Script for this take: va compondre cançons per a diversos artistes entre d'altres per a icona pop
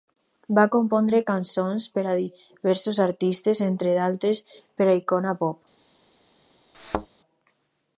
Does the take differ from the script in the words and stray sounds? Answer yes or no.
yes